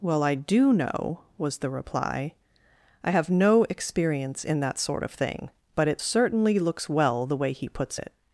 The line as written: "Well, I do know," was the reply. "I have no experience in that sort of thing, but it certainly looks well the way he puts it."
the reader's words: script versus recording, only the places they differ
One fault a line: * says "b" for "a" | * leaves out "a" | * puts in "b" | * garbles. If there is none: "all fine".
all fine